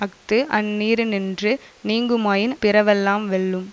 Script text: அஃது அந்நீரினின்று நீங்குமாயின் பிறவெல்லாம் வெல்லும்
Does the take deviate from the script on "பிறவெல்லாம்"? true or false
false